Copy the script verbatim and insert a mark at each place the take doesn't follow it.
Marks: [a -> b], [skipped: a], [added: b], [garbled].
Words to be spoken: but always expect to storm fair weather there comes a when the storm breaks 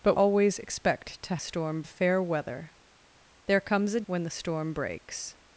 but always expect to storm fair weather there comes a when the storm breaks